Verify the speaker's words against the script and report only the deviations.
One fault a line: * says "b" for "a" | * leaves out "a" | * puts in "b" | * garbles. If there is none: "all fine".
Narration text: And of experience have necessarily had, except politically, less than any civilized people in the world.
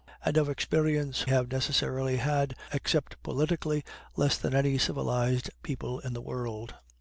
all fine